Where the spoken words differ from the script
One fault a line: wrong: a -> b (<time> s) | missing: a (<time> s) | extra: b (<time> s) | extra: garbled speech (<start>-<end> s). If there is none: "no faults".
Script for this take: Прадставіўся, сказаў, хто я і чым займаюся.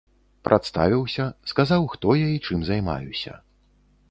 no faults